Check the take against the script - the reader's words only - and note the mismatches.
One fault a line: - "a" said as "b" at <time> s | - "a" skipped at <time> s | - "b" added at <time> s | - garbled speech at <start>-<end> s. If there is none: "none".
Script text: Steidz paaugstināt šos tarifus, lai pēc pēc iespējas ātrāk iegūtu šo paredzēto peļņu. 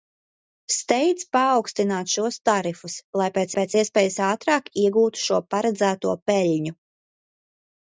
none